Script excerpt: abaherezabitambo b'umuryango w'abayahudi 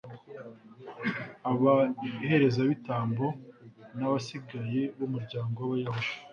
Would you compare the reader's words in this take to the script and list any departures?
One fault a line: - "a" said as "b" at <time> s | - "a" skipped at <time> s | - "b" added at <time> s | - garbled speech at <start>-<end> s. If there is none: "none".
- "n'abasigaye" added at 4.0 s